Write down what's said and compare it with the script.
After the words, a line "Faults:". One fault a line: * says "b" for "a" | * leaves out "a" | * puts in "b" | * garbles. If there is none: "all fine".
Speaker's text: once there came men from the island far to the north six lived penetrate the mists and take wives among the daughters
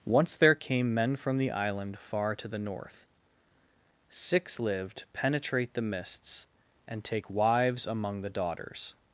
once there came men from the island far to the north six lived penetrate the mists and take wives among the daughters
Faults:
all fine